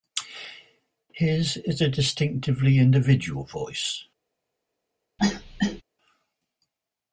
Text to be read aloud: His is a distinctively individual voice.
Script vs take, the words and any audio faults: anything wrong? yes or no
yes